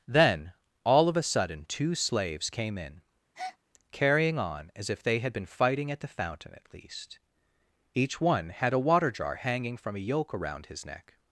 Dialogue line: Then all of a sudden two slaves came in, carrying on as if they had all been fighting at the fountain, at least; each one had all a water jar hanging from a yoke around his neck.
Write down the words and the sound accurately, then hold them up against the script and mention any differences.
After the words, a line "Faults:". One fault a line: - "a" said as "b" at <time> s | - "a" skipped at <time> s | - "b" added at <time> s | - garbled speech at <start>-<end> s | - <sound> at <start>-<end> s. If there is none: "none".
Then all of a sudden two slaves came in, carrying on as if they had been fighting at the fountain, at least; each one had a water jar hanging from a yoke around his neck.
Faults:
- breath at 3.3-3.6 s
- "all" skipped at 5.3 s
- "all" skipped at 8.7 s